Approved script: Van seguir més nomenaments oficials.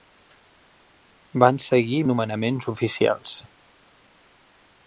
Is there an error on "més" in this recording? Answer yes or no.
yes